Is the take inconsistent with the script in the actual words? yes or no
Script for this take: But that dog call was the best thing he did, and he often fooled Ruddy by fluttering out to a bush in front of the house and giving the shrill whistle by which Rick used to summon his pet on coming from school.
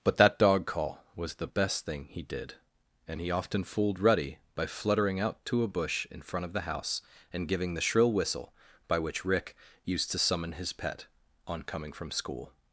no